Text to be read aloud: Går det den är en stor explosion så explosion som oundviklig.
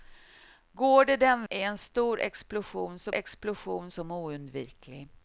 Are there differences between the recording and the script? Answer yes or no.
no